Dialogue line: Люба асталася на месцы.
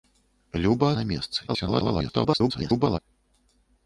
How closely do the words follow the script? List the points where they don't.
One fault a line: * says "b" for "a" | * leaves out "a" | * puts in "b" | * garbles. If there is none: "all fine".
* leaves out "асталася"
* garbles